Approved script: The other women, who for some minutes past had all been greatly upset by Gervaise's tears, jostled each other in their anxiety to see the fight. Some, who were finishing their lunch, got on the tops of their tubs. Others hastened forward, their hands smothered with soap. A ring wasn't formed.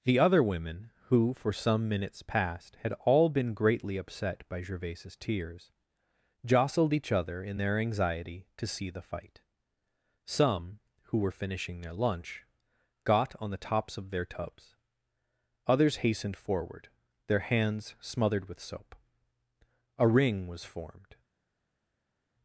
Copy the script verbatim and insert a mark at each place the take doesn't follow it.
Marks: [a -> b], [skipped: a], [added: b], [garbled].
The other women, who for some minutes past had all been greatly upset by Gervaise's tears, jostled each other in their anxiety to see the fight. Some, who were finishing their lunch, got on the tops of their tubs. Others hastened forward, their hands smothered with soap. A ring [wasn't -> was] formed.